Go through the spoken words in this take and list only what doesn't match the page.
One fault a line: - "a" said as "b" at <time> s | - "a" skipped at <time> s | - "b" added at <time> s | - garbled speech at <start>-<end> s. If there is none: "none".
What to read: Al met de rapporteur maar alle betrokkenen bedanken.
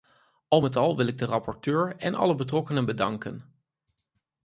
- "al wil ik" added at 0.8 s
- "maar" said as "en" at 2.0 s